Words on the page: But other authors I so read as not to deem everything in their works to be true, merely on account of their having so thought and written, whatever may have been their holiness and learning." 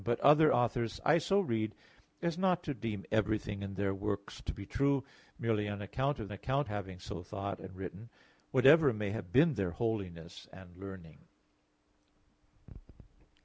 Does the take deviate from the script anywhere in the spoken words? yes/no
yes